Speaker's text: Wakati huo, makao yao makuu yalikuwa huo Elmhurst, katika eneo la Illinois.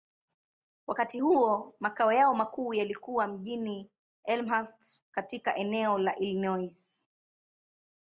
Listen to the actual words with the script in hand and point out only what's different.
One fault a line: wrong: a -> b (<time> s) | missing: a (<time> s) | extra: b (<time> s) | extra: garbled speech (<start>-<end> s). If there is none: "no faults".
wrong: huo -> mjini (3.3 s)